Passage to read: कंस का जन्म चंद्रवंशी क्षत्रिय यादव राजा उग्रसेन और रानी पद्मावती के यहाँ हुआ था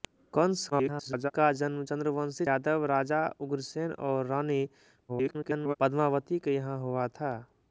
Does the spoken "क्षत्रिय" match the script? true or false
false